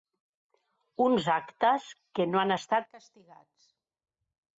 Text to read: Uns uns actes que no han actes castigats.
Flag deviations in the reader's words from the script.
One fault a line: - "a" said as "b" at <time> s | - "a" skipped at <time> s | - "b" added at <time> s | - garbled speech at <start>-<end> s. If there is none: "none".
- "uns" skipped at 1.3 s
- "actes" said as "estat" at 2.5 s